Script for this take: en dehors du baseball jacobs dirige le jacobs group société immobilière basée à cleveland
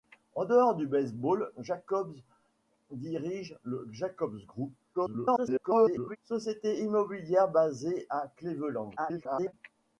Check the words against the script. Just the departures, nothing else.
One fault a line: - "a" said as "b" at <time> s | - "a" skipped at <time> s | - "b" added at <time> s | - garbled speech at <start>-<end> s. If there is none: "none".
- garbled speech at 4.9-6.2 s
- garbled speech at 9.0-9.5 s